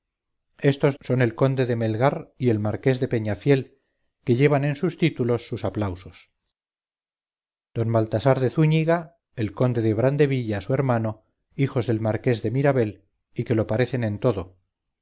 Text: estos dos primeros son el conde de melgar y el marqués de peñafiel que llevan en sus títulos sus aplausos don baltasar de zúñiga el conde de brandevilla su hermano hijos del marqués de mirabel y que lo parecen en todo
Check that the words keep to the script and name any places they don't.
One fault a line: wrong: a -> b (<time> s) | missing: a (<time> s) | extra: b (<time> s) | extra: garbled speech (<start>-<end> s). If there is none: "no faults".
missing: dos primeros (1.0 s)